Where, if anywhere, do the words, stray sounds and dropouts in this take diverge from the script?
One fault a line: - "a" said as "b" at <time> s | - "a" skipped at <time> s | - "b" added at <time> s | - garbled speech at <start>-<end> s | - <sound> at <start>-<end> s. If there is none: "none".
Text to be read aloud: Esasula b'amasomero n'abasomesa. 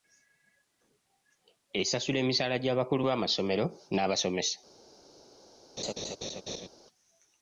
- "emisaala gy'abakulu" added at 2.2 s
- laugh at 5.8-6.7 s